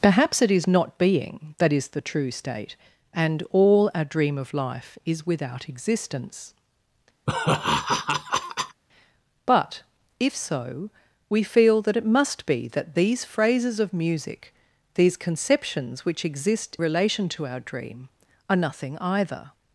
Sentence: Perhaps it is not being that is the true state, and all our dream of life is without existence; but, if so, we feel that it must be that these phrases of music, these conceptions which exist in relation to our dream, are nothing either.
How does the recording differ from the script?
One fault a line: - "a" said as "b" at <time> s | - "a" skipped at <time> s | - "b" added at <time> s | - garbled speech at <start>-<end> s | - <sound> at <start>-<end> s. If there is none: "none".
- laugh at 7.3-8.8 s
- "in" skipped at 16.8 s